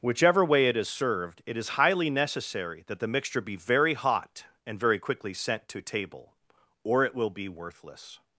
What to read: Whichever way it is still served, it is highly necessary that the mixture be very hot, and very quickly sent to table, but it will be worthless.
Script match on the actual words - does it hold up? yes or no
no